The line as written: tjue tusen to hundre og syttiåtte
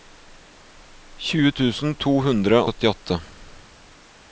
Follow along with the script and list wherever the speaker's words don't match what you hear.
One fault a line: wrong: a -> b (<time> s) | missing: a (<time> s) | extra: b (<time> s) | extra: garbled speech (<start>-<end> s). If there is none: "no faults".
missing: og (2.6 s)